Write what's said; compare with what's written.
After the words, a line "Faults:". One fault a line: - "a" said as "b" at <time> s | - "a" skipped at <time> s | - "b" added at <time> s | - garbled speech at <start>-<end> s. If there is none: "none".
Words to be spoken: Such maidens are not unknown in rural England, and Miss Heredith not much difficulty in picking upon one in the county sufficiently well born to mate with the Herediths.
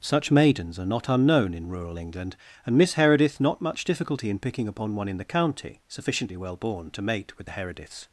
Such maidens are not unknown in rural England, and Miss Heredith not much difficulty in picking upon one in the county sufficiently well born to mate with the Herediths.
Faults:
none